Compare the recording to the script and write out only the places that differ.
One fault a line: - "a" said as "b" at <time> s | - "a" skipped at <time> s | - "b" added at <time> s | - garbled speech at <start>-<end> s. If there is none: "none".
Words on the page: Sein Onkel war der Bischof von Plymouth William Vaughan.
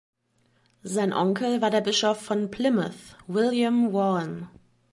none